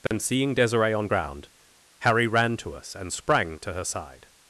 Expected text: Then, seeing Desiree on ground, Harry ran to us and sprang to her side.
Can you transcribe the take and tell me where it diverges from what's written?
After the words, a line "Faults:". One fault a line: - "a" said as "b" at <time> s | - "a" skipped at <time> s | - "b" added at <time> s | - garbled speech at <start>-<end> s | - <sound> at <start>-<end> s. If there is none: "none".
Then, seeing Desiree on ground, Harry ran to us and sprang to her side.
Faults:
- dropout at 0.1-0.1 s